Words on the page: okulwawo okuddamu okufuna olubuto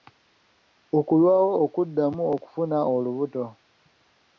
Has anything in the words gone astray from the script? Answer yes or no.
no